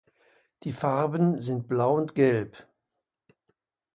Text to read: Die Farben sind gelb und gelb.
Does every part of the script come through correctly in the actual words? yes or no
no